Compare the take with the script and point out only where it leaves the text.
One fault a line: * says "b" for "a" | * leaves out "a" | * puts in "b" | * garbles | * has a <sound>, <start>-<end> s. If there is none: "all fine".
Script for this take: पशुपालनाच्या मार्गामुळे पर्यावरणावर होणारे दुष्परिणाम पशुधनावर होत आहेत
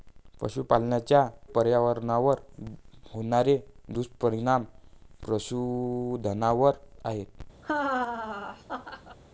* leaves out "मार्गामुळे"
* leaves out "होत"
* has a laugh, 7.6-9.2 s